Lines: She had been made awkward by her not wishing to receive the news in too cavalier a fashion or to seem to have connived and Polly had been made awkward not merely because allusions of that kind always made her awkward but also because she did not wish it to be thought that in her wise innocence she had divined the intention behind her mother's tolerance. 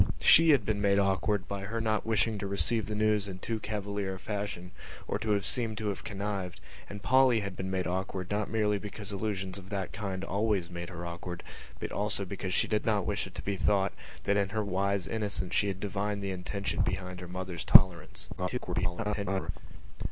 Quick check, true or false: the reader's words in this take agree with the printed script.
false